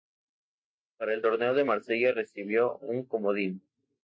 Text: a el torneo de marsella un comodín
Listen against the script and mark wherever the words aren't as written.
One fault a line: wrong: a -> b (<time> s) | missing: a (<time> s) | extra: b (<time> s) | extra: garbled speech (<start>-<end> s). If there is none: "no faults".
wrong: a -> para (1.0 s)
extra: recibió (2.1 s)